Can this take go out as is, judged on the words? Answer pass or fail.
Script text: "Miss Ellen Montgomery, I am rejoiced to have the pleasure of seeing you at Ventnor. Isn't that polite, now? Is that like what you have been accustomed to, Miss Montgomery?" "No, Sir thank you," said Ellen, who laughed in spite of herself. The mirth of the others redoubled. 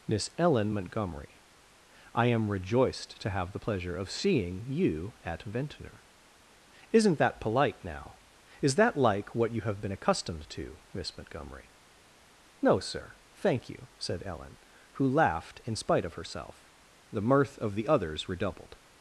pass